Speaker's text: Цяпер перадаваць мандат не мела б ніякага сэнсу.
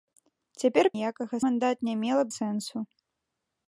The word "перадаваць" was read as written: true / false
false